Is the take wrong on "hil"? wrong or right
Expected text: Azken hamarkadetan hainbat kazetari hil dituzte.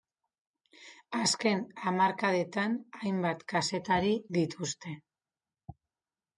wrong